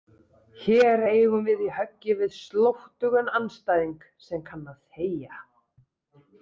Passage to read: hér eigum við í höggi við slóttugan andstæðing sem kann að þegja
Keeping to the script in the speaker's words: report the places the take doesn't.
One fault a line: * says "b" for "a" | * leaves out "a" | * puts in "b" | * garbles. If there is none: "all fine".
all fine